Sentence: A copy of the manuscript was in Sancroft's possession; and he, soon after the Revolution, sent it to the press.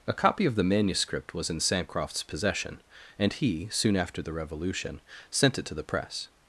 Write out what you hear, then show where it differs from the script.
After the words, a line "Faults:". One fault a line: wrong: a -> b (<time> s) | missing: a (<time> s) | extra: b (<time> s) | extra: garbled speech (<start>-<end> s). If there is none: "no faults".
A copy of the manuscript was in Sancroft's possession; and he, soon after the Revolution, sent it to the press.
Faults:
no faults